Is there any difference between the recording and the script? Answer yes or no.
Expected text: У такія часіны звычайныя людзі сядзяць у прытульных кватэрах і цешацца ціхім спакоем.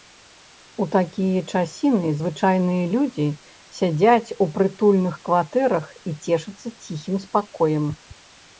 no